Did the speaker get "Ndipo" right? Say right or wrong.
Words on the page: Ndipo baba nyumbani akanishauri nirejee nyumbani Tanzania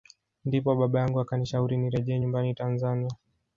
right